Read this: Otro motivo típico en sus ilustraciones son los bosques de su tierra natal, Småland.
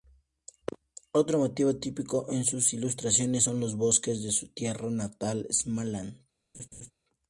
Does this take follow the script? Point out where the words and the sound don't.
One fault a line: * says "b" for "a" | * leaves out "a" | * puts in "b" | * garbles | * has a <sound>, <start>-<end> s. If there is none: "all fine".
* has a laugh, 6.5-6.9 s